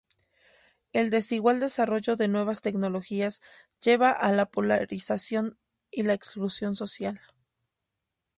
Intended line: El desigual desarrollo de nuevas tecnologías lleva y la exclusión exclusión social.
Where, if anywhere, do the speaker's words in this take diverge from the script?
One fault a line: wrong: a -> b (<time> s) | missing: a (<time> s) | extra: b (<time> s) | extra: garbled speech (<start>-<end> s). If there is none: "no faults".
extra: a la polarización (4.1 s)
missing: exclusión (6.7 s)